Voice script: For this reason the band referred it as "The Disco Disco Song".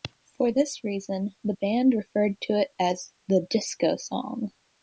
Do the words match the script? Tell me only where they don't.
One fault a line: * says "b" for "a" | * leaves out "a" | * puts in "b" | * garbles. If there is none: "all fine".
* puts in "to"
* leaves out "Disco"